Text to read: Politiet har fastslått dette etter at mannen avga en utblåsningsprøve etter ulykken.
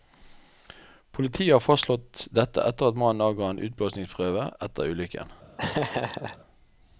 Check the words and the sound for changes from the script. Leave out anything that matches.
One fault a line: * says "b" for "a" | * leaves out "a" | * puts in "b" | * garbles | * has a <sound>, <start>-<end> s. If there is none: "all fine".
* has a laugh, 5.6-6.4 s